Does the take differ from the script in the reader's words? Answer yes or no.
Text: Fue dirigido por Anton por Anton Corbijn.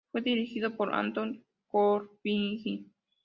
yes